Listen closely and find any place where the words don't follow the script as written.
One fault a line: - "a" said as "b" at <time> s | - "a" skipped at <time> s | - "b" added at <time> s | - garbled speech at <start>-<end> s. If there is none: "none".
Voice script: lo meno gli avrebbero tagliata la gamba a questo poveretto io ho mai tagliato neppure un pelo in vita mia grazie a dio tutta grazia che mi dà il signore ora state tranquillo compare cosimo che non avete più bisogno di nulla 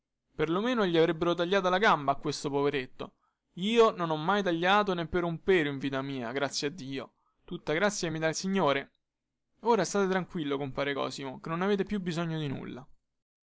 - "non" added at 3.9 s